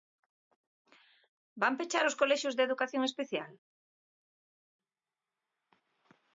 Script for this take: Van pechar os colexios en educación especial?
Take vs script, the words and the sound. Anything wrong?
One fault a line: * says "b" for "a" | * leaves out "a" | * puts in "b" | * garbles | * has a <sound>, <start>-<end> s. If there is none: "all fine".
* says "de" for "en"